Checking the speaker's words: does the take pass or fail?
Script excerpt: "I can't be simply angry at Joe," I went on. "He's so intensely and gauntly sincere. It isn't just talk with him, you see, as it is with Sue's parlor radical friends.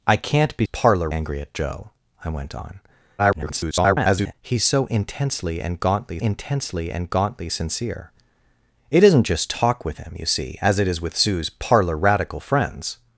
fail